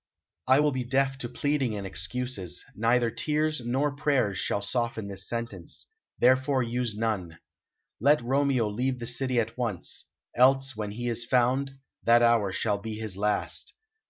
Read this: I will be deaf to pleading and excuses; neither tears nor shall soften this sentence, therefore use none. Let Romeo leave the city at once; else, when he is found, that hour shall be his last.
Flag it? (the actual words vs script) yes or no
yes